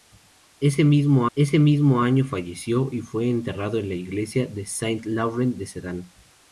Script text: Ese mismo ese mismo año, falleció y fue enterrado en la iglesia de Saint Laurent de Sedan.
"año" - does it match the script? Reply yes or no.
yes